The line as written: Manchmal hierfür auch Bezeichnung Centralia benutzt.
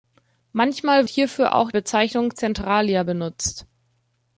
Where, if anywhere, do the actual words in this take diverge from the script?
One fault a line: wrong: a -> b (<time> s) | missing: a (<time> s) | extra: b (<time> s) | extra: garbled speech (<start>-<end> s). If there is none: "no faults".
no faults